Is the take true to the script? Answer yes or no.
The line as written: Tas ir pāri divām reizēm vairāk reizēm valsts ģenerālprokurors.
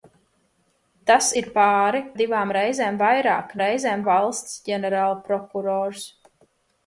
yes